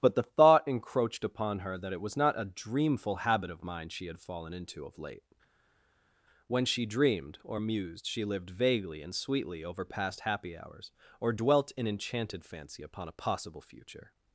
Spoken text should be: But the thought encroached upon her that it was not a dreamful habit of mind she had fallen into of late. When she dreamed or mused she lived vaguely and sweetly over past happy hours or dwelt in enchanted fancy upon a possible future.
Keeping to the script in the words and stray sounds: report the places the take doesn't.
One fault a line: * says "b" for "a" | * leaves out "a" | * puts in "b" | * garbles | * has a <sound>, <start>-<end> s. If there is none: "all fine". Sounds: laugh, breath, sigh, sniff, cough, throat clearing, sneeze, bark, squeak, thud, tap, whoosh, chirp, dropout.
all fine